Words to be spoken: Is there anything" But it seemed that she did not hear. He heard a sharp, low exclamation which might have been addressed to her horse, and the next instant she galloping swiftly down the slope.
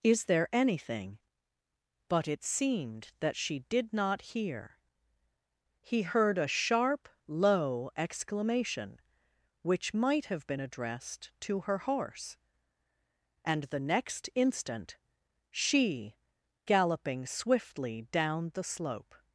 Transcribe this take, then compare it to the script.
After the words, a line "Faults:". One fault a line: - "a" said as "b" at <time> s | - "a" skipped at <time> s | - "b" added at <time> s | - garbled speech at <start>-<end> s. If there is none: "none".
Is there anything" But it seemed that she did not hear. He heard a sharp, low exclamation which might have been addressed to her horse, and the next instant she galloping swiftly down the slope.
Faults:
none